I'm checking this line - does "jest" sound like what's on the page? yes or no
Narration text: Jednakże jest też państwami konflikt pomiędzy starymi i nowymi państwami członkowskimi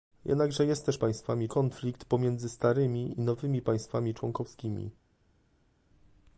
yes